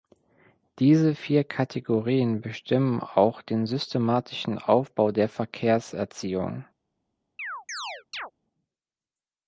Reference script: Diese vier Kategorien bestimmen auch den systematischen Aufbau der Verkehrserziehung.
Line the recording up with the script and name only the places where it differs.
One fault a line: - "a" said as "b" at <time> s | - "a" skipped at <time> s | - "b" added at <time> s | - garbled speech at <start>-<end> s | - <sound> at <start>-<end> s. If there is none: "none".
- chirp at 7.4-8.3 s